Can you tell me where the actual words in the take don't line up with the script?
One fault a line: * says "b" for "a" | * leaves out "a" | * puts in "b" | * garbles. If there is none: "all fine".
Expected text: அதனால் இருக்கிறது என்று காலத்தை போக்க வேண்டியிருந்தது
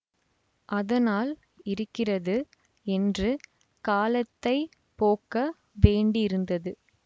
all fine